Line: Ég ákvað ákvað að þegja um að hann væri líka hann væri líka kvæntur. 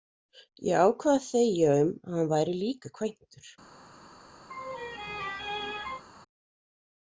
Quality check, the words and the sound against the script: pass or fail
fail